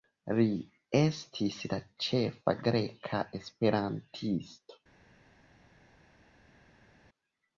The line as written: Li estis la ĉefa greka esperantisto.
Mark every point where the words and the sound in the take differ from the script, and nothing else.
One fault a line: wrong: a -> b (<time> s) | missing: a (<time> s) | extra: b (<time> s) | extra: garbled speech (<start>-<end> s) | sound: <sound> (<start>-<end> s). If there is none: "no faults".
no faults